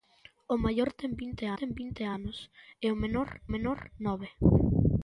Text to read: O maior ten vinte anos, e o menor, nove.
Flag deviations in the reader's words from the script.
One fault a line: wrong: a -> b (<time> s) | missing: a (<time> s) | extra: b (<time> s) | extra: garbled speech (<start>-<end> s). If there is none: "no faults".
extra: ten vinte (1.6 s)
extra: menor (3.5 s)